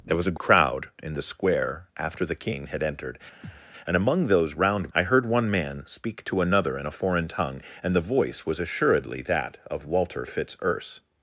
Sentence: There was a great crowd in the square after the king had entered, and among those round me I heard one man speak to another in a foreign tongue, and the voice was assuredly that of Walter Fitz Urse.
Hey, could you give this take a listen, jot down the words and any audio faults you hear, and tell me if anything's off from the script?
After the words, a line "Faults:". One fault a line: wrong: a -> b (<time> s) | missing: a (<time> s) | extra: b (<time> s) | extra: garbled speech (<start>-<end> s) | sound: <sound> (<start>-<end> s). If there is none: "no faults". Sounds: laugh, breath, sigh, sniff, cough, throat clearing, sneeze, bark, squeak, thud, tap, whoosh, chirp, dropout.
There was a crowd in the square after the king had entered, and among those round I heard one man speak to another in a foreign tongue, and the voice was assuredly that of Walter Fitz Urse.
Faults:
missing: great (0.4 s)
sound: thud (3.4-3.7 s)
missing: me (4.9 s)